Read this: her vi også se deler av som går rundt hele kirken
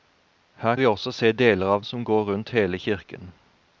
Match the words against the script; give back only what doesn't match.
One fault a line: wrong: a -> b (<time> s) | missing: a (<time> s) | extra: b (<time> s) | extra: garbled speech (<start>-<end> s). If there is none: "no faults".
no faults